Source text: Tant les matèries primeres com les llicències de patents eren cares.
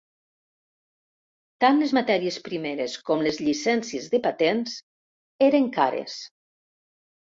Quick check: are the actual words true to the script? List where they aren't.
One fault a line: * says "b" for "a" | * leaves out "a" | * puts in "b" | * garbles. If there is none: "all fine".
all fine